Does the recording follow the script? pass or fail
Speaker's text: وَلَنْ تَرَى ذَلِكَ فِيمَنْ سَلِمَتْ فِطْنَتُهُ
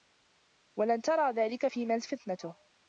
fail